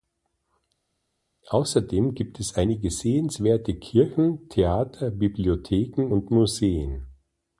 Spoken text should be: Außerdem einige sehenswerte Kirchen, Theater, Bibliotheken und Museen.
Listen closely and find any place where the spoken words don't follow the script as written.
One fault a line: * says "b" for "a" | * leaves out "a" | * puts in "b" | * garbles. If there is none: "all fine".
* puts in "gibt es"